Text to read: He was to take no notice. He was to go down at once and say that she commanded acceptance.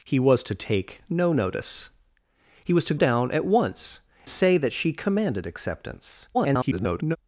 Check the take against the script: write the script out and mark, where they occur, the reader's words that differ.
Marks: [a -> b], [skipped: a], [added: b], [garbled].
He was to take no notice. He was to [skipped: go] down at once [skipped: and] say that she commanded acceptance. [garbled]